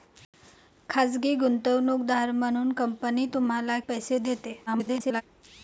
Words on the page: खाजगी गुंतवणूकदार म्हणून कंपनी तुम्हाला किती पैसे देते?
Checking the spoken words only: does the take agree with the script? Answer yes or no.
no